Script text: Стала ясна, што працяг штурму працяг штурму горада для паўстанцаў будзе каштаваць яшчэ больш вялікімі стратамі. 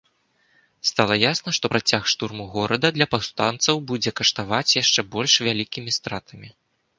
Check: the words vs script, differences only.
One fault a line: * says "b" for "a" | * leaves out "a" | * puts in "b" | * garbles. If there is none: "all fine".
* leaves out "працяг штурму"